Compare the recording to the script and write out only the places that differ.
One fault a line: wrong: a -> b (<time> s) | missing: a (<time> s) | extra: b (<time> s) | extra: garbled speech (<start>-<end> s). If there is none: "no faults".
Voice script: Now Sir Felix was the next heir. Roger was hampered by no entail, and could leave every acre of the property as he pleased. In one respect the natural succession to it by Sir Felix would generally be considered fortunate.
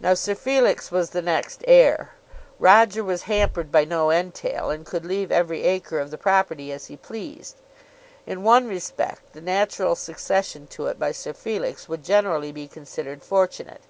no faults